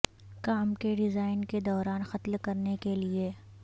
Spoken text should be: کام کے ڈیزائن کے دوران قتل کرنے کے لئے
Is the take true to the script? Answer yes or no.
yes